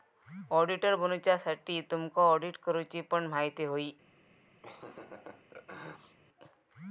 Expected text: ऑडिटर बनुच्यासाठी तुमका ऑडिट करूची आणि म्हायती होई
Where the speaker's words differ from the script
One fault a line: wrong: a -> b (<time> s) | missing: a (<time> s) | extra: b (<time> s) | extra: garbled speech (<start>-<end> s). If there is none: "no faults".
wrong: आणि -> पण (3.0 s)